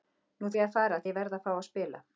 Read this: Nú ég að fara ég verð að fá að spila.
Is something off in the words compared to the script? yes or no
no